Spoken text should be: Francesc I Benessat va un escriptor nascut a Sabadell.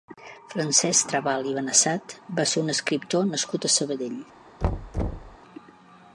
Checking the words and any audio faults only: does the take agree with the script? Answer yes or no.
no